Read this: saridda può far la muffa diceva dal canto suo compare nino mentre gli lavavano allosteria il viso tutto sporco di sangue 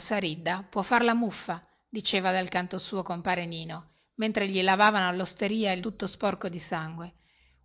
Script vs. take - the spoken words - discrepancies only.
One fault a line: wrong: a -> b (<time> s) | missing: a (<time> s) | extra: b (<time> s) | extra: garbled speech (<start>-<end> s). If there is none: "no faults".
missing: viso (5.8 s)